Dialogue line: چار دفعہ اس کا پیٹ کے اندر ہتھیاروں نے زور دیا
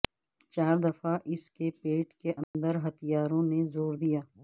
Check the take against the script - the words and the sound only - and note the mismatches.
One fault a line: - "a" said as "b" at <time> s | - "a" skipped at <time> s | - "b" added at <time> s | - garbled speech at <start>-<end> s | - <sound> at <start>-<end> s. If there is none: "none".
- "کا" said as "کے" at 1.5 s
- dropout at 2.4-2.5 s